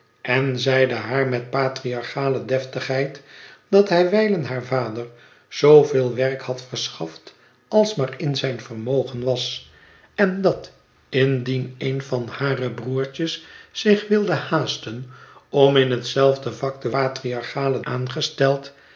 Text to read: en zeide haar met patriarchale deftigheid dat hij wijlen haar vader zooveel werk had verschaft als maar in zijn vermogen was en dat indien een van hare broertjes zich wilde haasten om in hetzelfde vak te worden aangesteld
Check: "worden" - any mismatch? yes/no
yes